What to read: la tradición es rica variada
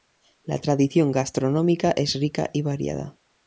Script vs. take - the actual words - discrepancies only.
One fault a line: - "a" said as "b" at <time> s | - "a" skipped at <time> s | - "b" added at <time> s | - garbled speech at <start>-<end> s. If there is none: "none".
- "gastronómica" added at 1.1 s
- "y" added at 2.5 s